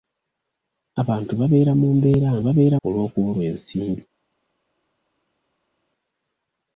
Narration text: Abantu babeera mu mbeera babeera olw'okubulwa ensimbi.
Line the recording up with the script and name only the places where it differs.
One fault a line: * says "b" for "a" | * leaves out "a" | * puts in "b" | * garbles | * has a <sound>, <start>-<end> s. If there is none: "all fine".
all fine